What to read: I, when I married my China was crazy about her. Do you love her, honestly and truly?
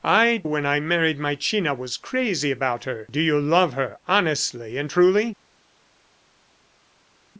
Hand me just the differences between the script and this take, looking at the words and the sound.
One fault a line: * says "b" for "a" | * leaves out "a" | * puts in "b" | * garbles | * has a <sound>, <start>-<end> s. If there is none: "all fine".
all fine